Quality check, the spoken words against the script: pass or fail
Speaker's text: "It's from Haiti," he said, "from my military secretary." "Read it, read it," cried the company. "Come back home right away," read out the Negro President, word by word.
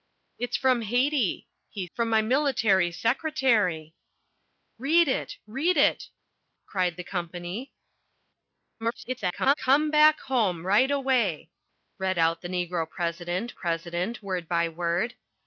fail